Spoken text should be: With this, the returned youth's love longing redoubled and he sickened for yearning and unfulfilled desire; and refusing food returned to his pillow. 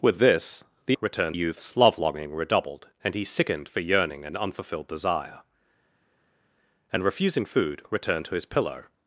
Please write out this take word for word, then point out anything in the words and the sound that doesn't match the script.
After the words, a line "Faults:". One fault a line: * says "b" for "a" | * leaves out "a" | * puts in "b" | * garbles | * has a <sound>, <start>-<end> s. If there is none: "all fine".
With this, the returned youth's love longing redoubled and he sickened for yearning and unfulfilled desire; and refusing food returned to his pillow.
Faults:
all fine